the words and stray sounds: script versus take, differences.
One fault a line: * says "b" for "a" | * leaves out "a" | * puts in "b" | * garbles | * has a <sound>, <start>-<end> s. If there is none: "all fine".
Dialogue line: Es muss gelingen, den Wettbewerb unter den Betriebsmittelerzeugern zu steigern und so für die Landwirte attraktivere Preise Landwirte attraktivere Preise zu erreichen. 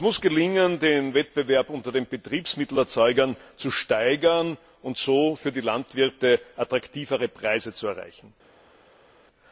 * leaves out "Landwirte attraktivere Preise"